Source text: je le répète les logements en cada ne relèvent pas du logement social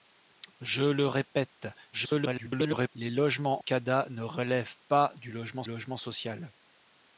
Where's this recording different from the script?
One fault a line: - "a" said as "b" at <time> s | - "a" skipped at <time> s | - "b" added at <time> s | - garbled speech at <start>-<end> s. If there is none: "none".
- garbled speech at 1.9-2.9 s
- "en" skipped at 3.6 s
- "logement" added at 5.6 s